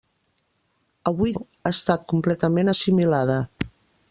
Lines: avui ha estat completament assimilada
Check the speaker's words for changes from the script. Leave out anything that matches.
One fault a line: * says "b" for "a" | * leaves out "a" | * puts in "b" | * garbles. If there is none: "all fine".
all fine